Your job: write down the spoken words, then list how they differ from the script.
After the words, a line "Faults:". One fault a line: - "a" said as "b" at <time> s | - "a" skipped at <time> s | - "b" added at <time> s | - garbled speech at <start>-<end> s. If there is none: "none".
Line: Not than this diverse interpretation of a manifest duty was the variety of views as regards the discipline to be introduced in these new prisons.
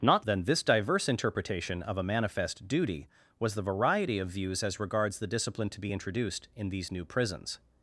Not than this diverse interpretation of a manifest duty was the variety of views as regards the discipline to be introduced in these new prisons.
Faults:
none